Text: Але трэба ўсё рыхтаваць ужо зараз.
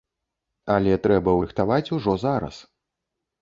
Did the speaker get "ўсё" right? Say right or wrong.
wrong